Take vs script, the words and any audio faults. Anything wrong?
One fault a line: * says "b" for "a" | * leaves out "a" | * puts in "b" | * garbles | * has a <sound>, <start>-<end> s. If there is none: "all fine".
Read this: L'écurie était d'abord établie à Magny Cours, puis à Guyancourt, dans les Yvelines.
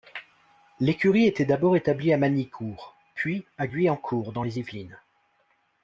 all fine